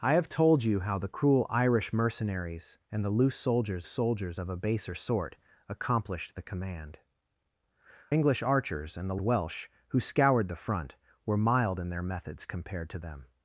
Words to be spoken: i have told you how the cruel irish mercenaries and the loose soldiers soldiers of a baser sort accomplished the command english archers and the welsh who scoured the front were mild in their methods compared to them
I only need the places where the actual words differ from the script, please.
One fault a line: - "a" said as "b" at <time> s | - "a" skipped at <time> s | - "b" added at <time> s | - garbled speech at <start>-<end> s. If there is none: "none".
none